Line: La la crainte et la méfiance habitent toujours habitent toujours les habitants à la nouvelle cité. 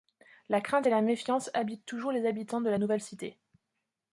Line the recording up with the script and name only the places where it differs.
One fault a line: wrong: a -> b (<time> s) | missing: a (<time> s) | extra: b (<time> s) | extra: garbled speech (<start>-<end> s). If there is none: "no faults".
missing: la (0.6 s)
missing: habitent toujours (2.1 s)
wrong: à -> de (2.6 s)